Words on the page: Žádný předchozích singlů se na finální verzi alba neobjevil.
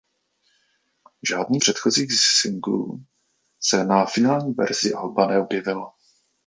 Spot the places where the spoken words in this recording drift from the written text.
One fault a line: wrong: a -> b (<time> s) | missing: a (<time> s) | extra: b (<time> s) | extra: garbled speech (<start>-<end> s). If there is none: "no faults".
no faults